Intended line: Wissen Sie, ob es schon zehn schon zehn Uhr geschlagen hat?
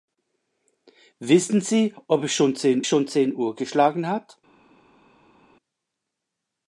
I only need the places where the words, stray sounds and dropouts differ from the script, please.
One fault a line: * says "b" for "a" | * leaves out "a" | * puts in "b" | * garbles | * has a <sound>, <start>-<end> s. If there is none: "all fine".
all fine